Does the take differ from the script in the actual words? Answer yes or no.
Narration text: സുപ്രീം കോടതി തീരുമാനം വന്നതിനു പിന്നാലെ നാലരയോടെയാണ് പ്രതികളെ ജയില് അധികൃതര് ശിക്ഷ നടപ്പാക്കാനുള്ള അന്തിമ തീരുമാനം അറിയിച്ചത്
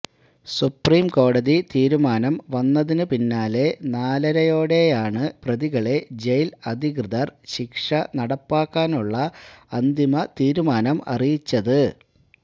no